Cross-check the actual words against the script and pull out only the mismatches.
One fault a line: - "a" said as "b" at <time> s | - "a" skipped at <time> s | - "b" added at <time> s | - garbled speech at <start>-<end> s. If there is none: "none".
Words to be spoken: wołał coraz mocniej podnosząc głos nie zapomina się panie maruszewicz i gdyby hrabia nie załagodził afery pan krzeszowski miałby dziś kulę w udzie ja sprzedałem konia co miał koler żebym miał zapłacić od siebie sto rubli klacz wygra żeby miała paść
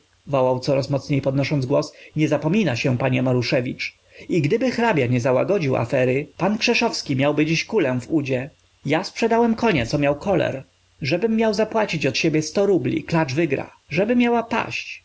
none